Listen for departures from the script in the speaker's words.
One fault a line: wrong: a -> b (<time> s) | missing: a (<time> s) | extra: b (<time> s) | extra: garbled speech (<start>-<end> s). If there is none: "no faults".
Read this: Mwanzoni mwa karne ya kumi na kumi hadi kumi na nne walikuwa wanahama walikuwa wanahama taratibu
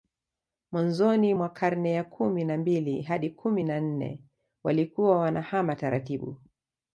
wrong: kumi -> mbili (2.6 s)
missing: walikuwa wanahama (5.7 s)